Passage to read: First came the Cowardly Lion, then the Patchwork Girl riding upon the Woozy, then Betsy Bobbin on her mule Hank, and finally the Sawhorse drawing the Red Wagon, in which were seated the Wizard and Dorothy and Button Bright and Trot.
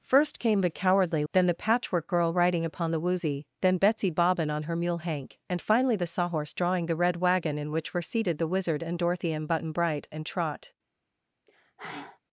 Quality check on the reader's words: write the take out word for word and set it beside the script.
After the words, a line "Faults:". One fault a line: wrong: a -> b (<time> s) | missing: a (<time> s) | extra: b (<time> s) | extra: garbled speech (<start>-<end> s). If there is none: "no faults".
First came the Cowardly Then the Patchwork Girl riding upon the Woozy, then Betsy Bobbin on her mule Hank, and finally the Sawhorse drawing the Red Wagon, in which were seated the Wizard and Dorothy and Button Bright and Trot.
Faults:
missing: Lion (1.2 s)